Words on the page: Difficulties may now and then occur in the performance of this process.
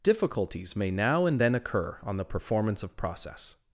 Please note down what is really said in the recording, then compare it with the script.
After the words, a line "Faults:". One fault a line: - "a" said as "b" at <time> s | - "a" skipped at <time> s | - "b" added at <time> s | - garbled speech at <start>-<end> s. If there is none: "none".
Difficulties may now and then occur on the performance of process.
Faults:
- "in" said as "on" at 2.0 s
- "this" skipped at 3.0 s